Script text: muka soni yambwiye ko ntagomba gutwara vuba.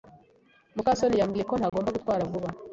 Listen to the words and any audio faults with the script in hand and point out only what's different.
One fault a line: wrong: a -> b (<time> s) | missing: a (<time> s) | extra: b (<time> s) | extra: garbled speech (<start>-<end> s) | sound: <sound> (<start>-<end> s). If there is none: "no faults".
sound: dropout (1.7-1.7 s)